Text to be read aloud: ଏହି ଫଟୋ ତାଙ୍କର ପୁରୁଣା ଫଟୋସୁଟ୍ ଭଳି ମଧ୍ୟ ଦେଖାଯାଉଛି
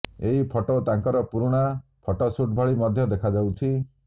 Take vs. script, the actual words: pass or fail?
pass